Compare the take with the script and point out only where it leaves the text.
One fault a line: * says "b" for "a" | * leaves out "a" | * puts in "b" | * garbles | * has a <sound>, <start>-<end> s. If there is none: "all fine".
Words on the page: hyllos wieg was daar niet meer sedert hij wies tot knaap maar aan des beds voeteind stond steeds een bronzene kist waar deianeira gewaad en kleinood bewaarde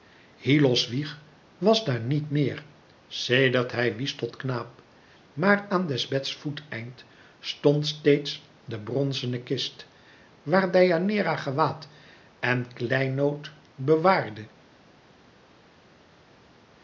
* says "de" for "een"